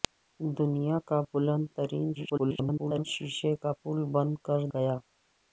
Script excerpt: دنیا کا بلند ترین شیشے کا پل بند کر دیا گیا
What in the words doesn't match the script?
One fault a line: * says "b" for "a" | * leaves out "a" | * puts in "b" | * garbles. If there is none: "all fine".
* garbles
* leaves out "دیا"